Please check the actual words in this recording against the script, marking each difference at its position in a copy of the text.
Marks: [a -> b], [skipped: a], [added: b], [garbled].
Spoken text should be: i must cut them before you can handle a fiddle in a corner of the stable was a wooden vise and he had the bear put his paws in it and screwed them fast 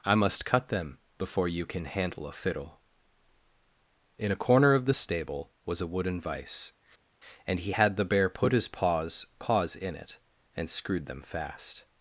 i must cut them before you can handle a fiddle in a corner of the stable was a wooden vise and he had the bear put his paws [added: paws] in it and screwed them fast